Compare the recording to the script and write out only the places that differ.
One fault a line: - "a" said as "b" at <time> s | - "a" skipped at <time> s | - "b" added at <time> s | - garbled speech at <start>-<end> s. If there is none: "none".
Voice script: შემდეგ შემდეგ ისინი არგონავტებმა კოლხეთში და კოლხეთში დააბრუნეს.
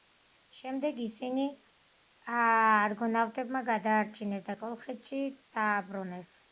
- "შემდეგ" skipped at 1.0 s
- "კოლხეთში" said as "გადაარჩინეს" at 3.7 s